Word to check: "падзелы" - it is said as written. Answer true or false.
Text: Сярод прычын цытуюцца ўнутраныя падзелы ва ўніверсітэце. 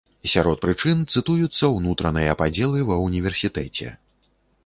true